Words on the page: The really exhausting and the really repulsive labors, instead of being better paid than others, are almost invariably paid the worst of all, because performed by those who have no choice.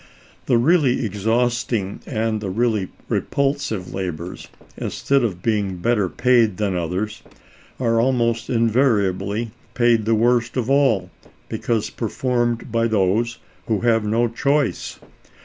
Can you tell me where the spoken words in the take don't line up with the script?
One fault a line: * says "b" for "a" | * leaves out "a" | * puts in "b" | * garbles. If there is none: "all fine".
all fine